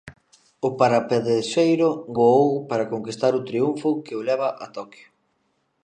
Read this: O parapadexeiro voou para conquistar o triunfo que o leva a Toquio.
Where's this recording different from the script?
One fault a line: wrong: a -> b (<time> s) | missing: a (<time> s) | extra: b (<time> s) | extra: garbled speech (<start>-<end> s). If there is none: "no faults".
no faults